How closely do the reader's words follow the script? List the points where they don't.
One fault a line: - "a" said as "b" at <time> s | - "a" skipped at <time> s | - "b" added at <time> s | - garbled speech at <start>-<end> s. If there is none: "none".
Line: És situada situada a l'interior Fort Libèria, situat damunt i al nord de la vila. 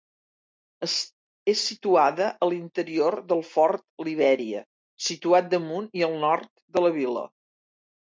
- "situada" skipped at 2.3 s
- "del" added at 3.3 s